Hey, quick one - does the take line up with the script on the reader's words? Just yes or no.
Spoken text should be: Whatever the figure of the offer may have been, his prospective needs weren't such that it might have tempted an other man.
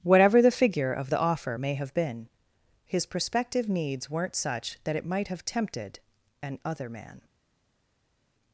yes